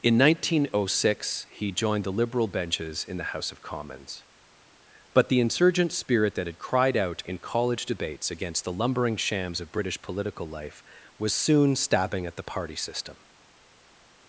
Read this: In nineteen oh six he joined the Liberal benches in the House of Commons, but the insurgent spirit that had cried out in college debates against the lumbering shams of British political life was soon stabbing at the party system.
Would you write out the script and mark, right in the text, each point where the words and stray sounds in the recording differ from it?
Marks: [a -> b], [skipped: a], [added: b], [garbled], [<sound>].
In nineteen oh six he joined the Liberal benches in the House of Commons, but the insurgent spirit that had cried out in college debates against the lumbering shams of British political life was soon stabbing at the party system.